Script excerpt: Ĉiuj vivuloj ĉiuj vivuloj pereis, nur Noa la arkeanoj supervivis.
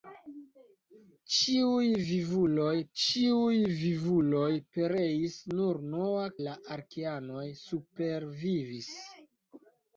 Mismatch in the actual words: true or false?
false